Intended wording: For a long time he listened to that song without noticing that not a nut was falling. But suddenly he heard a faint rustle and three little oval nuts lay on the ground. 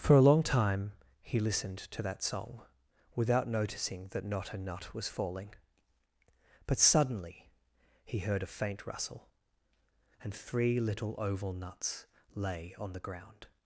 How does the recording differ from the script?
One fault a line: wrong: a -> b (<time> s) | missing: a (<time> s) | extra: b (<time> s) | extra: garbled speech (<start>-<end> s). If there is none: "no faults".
no faults